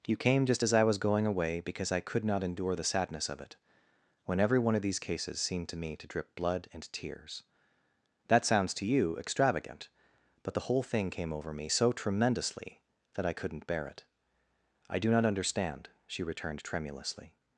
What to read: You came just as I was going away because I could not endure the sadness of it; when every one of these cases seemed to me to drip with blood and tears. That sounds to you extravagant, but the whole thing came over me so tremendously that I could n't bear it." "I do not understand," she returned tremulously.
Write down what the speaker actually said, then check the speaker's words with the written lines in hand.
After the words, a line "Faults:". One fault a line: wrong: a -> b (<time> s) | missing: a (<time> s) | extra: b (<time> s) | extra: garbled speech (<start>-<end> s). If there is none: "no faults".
You came just as I was going away because I could not endure the sadness of it; when every one of these cases seemed to me to drip blood and tears. That sounds to you extravagant, but the whole thing came over me so tremendously that I could n't bear it." "I do not understand," she returned tremulously.
Faults:
missing: with (6.3 s)